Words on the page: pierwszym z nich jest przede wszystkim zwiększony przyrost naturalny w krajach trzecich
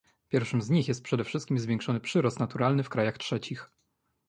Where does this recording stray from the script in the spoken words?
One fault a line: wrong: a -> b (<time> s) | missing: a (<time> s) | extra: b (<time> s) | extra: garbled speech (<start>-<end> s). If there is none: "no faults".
no faults